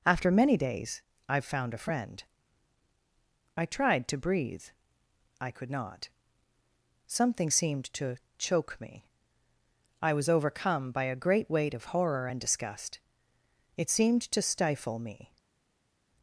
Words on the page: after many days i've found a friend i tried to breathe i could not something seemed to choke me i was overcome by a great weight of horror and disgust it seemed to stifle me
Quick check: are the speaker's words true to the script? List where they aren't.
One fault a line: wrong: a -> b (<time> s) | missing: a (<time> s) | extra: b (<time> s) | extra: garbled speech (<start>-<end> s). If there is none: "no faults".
no faults